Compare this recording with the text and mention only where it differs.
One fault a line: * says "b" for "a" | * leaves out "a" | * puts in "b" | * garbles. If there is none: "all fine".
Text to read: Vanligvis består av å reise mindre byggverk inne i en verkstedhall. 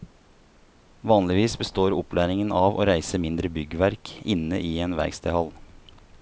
* puts in "opplæringen"